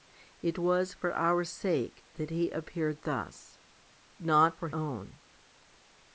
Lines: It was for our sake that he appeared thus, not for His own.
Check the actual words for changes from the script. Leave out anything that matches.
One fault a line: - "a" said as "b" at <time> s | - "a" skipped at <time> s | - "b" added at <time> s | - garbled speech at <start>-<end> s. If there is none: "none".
- "His" skipped at 4.7 s